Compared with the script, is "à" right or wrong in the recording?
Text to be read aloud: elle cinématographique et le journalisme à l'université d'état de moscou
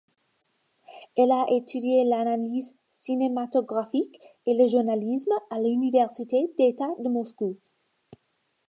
right